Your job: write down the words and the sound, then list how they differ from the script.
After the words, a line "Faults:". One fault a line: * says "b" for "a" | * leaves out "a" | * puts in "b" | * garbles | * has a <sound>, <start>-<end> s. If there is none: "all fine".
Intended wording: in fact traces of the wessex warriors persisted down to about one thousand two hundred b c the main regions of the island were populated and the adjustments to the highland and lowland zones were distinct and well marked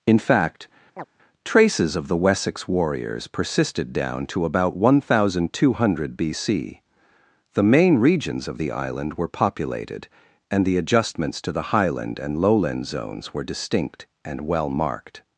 in fact traces of the wessex warriors persisted down to about one thousand two hundred b c the main regions of the island were populated and the adjustments to the highland and lowland zones were distinct and well marked
Faults:
* has a chirp, 1.0-1.0 s